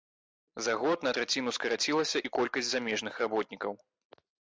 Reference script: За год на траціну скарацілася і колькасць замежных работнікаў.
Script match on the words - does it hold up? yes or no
yes